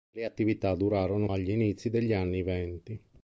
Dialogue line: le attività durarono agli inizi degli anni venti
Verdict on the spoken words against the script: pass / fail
pass